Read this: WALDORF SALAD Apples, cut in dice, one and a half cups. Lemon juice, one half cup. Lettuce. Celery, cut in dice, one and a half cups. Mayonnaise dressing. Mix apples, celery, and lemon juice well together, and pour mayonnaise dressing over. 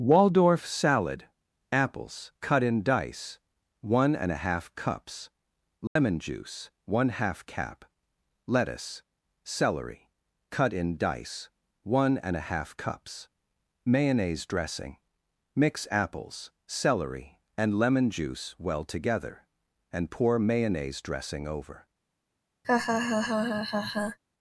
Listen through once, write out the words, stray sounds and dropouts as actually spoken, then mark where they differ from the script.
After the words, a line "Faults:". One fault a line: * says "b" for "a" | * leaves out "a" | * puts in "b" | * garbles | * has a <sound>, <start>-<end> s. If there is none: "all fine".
WALDORF SALAD Apples, cut in dice, one and a half cups. Lemon juice, one half cap. Lettuce. Celery, cut in dice, one and a half cups. Mayonnaise dressing. Mix apples, celery, and lemon juice well together, and pour mayonnaise dressing over.
Faults:
* has a dropout, 5.9-6.0 s
* says "cap" for "cup"
* has a laugh, 22.6-24.2 s